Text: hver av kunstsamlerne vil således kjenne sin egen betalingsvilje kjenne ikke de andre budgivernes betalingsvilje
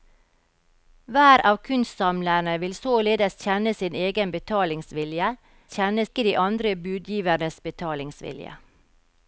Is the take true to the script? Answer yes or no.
yes